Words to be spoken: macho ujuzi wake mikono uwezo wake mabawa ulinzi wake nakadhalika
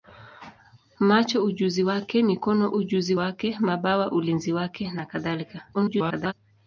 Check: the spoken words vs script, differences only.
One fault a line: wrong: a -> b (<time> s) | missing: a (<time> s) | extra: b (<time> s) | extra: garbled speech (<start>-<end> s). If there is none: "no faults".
wrong: uwezo -> ujuzi (2.8 s)
extra: garbled speech (5.7-6.3 s)